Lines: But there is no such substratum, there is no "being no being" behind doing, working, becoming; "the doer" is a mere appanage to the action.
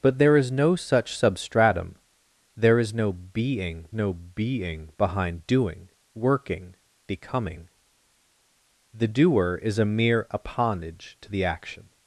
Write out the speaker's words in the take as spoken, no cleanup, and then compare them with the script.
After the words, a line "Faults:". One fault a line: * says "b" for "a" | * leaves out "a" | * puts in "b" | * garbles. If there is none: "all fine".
But there is no such substratum, there is no "being no being" behind doing, working, becoming; "the doer" is a mere appanage to the action.
Faults:
all fine